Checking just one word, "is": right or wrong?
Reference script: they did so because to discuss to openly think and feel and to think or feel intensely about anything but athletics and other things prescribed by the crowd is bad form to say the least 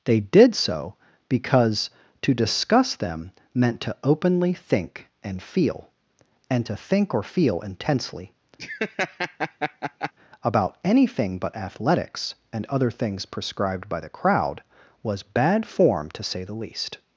wrong